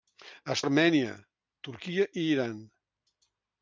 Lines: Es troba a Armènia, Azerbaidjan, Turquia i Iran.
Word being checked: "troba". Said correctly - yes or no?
no